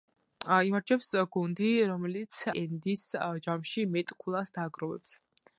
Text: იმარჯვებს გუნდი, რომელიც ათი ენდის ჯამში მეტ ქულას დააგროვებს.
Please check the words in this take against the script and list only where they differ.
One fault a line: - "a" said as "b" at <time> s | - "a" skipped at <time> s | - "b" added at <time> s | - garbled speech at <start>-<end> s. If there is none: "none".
- "ათი" skipped at 2.4 s